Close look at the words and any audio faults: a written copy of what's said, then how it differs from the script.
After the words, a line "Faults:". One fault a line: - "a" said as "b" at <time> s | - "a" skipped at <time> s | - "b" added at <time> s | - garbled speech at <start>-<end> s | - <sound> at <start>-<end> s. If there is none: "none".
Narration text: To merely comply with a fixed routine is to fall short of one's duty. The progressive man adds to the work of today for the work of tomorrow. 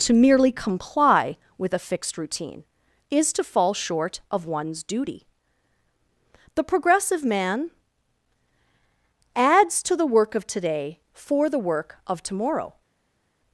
To merely comply with a fixed routine is to fall short of one's duty. The progressive man adds to the work of today for the work of tomorrow.
Faults:
none